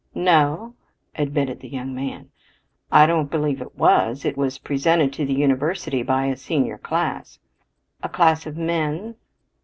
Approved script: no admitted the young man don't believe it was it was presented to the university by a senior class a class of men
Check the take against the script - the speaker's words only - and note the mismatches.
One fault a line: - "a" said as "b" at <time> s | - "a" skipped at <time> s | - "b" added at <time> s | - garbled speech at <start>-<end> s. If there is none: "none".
- "i" added at 2.9 s